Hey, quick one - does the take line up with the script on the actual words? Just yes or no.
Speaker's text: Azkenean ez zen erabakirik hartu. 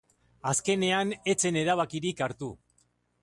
yes